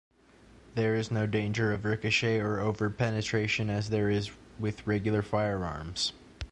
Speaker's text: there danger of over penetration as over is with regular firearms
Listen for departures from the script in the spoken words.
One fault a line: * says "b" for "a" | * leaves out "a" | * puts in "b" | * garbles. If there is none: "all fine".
* puts in "is no"
* puts in "ricochet or"
* says "there" for "over"